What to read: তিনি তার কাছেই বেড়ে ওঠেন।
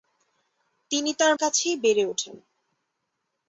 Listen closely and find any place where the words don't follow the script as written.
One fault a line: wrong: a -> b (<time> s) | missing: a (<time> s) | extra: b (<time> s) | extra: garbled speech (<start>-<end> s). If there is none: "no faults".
no faults